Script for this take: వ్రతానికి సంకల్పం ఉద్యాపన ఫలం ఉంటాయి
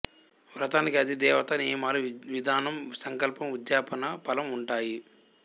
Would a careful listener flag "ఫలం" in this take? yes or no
no